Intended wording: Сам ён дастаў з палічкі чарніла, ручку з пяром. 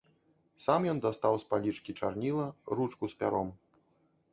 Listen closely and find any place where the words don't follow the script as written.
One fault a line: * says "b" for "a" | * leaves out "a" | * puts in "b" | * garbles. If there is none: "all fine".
all fine